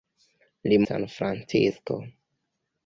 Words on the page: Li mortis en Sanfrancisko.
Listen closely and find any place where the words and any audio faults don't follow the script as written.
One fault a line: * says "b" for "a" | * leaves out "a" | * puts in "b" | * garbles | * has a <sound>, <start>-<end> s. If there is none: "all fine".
* leaves out "mortis en"